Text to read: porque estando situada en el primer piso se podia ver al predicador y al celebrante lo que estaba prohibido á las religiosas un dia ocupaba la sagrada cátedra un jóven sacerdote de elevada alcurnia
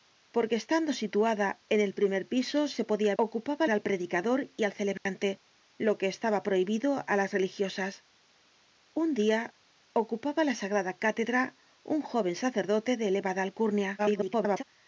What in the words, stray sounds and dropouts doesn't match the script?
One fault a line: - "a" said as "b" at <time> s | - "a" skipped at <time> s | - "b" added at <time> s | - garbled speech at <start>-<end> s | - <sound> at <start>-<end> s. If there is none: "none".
- "ver" said as "ocupaba" at 3.2 s
- dropout at 5.0-5.1 s
- garbled speech at 14.0-14.6 s